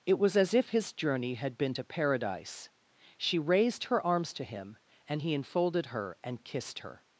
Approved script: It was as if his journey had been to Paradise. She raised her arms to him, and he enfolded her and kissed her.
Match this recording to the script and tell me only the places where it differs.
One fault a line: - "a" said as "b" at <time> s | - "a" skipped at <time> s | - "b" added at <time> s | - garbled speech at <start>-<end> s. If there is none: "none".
none